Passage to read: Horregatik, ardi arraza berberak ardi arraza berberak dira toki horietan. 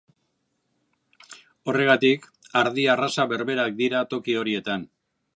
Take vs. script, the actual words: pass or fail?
fail